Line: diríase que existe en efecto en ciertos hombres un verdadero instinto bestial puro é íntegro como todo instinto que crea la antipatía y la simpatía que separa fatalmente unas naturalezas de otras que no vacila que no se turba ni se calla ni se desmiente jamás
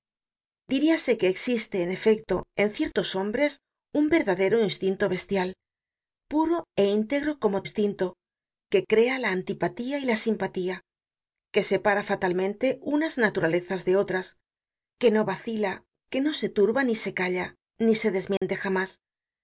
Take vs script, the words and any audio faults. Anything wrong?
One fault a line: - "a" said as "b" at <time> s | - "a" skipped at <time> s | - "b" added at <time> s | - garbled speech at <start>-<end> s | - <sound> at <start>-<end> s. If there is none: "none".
- "todo" skipped at 7.6 s
- dropout at 18.4-18.4 s